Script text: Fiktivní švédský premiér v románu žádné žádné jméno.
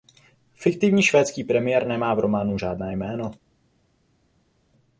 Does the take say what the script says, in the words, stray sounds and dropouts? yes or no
no